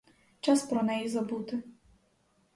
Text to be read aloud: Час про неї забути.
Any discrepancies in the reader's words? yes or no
no